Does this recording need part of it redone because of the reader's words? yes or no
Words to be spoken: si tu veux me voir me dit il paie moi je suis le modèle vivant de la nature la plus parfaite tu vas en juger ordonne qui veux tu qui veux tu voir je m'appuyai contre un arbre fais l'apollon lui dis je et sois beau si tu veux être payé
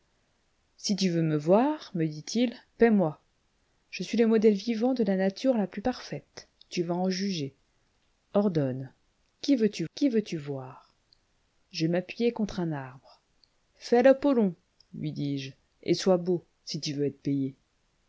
no